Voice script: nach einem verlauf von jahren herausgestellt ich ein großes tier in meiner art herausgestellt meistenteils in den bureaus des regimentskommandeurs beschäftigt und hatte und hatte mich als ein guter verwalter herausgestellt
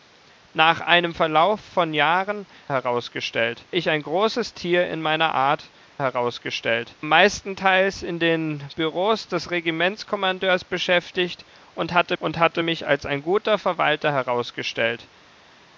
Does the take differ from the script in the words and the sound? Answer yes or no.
no